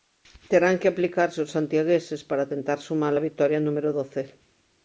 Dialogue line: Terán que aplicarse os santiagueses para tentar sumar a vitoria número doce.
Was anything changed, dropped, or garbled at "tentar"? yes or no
no